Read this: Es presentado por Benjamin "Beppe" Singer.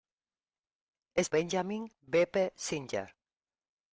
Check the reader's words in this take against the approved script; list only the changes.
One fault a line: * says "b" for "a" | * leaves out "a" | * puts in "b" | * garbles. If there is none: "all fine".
* leaves out "presentado por"